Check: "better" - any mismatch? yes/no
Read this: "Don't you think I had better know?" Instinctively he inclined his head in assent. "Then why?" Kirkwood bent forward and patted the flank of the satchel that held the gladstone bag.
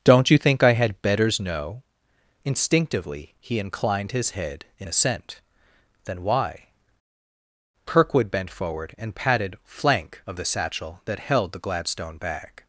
yes